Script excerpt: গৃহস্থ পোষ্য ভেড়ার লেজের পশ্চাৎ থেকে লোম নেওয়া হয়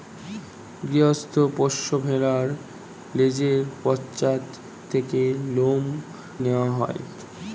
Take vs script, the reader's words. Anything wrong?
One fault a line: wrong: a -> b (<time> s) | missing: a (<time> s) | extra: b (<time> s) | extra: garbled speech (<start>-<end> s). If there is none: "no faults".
no faults